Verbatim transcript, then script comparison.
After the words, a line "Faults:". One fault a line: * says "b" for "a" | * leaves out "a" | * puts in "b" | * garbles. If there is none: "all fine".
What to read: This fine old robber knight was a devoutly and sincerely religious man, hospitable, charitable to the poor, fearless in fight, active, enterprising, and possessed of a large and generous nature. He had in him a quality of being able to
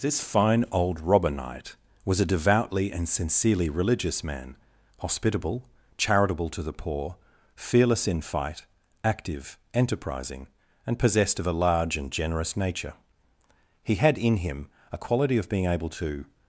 This fine old robber knight was a devoutly and sincerely religious man, hospitable, charitable to the poor, fearless in fight, active, enterprising, and possessed of a large and generous nature. He had in him a quality of being able to
Faults:
all fine